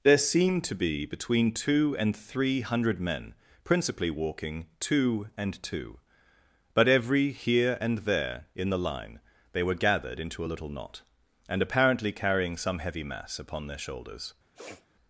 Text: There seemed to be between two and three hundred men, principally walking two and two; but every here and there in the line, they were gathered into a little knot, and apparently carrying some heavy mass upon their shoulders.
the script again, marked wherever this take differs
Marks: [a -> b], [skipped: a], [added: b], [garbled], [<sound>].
There seemed to be between two and three hundred men, principally walking two and two; but every here and there in the line, they were gathered into a little knot, and apparently carrying some heavy mass upon their shoulders. [sniff]